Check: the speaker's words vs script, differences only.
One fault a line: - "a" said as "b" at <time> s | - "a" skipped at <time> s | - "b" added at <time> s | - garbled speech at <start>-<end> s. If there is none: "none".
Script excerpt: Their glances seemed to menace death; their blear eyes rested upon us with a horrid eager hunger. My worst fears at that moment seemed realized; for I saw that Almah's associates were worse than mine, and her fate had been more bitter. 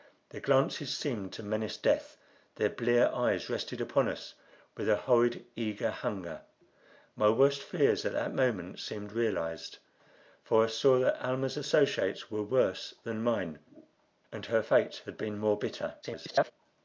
- garbled speech at 16.0-16.5 s